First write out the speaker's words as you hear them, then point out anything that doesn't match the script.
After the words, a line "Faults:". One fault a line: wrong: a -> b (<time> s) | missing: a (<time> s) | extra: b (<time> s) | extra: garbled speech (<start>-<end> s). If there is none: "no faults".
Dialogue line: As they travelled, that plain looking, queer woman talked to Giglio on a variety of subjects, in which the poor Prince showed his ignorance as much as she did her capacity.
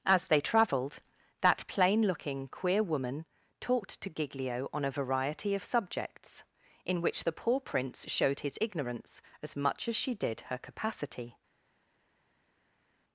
As they travelled, that plain looking, queer woman talked to Giglio on a variety of subjects, in which the poor Prince showed his ignorance as much as she did her capacity.
Faults:
no faults